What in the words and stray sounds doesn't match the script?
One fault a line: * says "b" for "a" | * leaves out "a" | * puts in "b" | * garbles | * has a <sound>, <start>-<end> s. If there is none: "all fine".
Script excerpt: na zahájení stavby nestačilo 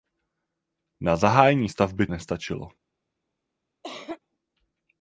* has a cough, 3.8-4.2 s